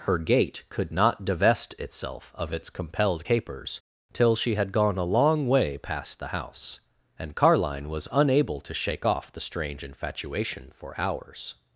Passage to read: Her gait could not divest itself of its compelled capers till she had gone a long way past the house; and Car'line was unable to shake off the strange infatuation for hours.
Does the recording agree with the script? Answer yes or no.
yes